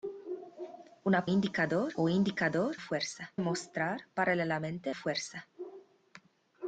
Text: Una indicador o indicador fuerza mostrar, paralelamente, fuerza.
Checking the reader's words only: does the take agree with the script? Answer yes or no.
yes